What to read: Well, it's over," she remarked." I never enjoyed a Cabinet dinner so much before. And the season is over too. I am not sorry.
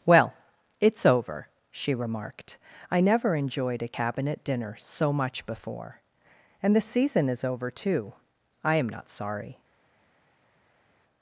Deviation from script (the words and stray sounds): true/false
false